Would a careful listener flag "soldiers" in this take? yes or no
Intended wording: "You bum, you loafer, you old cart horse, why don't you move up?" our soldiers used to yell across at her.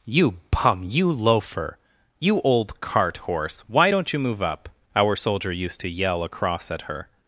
yes